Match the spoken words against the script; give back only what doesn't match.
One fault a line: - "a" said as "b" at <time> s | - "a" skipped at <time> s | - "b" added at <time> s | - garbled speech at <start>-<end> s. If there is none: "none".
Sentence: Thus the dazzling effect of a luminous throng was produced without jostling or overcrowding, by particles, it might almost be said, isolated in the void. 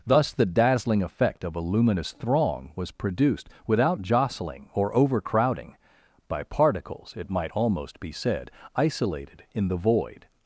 none